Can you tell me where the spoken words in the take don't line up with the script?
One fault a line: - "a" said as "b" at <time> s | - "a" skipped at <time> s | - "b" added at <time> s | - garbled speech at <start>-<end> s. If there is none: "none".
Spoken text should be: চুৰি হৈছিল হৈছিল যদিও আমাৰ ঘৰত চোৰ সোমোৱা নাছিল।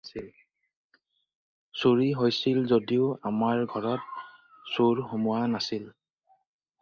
- "হৈছিল" skipped at 2.6 s